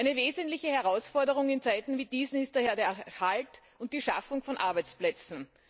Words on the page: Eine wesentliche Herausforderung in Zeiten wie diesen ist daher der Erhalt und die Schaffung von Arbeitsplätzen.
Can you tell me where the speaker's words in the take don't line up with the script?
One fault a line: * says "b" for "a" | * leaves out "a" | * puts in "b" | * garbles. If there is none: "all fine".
all fine